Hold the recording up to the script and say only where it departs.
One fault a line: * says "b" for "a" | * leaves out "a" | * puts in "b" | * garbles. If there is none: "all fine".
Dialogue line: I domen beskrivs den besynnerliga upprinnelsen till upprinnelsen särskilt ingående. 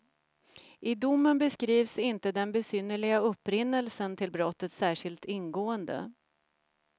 * puts in "inte"
* says "brottet" for "upprinnelsen"